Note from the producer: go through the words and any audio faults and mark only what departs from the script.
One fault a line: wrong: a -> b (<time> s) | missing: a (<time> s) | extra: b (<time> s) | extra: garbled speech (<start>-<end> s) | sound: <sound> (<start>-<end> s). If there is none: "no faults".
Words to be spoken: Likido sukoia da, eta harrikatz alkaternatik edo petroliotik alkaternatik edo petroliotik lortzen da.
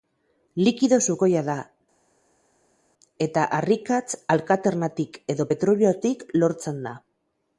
missing: alkaternatik edo petroliotik (6.3 s)